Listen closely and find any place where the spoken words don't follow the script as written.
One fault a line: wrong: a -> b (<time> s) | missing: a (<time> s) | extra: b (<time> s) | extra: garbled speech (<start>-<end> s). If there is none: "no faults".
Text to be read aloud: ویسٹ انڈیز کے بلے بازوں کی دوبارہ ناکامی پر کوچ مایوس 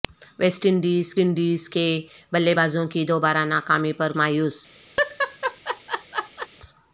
extra: انڈیز (1.2 s)
missing: کوچ (4.1 s)